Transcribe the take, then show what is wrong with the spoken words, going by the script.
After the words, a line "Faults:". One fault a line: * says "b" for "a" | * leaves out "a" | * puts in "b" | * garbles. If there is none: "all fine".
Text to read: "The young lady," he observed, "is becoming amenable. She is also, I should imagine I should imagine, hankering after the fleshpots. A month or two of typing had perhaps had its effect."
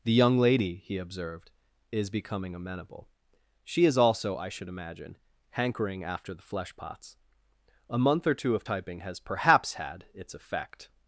"The young lady," he observed, "is becoming amenable. She is also, I should imagine, hankering after the fleshpots. A month or two of typing has perhaps had its effect."
Faults:
* leaves out "I should imagine"
* says "has" for "had"